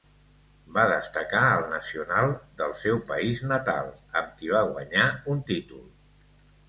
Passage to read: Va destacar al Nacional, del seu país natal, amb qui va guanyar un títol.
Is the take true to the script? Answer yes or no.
yes